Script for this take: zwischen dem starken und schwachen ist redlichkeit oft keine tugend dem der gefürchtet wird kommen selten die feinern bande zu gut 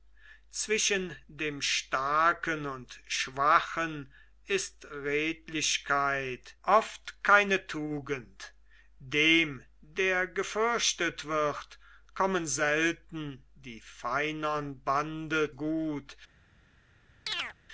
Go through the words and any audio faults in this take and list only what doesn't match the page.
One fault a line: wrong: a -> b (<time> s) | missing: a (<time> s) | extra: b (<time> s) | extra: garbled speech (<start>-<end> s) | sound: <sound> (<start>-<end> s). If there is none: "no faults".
missing: zu (15.5 s)
sound: chirp (17.3-17.5 s)